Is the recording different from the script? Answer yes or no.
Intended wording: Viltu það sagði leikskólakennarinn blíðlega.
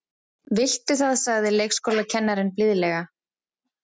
no